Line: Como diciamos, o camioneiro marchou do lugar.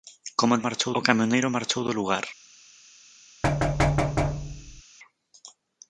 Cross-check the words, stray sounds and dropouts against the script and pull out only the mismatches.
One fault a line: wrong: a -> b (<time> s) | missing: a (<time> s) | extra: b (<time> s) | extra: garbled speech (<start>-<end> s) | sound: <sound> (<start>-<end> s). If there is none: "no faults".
wrong: diciamos -> marchou (0.7 s)
sound: thud (3.4-4.8 s)